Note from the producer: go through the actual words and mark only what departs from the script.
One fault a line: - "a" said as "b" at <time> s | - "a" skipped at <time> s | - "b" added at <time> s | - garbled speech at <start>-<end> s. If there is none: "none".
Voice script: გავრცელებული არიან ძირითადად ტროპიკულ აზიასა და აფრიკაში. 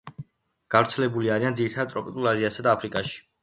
none